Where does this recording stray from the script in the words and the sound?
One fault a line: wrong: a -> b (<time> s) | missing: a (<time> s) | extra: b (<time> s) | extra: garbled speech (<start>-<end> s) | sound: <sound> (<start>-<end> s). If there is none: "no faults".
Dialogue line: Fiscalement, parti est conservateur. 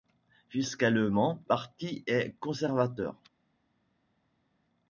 no faults